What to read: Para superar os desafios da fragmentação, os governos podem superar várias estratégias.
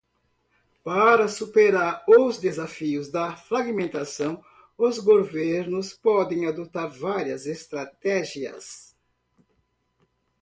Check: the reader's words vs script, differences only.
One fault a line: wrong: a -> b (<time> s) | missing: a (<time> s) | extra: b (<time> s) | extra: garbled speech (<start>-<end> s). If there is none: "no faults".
wrong: superar -> adotar (6.5 s)